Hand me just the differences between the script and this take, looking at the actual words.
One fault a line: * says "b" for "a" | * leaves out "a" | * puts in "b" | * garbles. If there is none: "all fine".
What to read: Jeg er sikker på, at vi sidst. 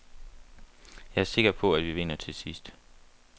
* puts in "vinder til"